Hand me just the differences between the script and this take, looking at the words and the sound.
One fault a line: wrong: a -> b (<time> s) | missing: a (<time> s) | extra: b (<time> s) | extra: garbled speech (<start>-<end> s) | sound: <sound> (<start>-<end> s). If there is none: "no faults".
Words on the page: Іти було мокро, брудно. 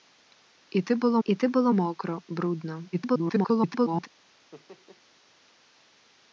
extra: іти було (1.2 s)
extra: garbled speech (2.9-4.1 s)
sound: laugh (4.5-5.0 s)